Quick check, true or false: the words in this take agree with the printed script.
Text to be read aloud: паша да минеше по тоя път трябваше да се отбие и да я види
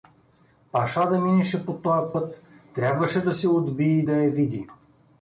true